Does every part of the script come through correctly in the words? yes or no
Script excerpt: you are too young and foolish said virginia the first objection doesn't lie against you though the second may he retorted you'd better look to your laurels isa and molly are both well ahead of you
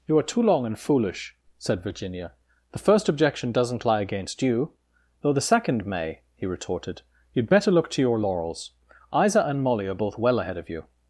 no